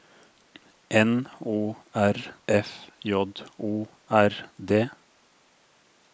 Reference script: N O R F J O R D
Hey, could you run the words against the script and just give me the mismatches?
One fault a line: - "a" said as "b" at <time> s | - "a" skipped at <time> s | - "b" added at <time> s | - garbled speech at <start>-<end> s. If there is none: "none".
none